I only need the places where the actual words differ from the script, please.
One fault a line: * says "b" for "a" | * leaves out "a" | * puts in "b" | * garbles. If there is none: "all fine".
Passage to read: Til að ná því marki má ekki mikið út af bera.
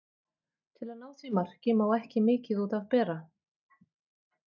all fine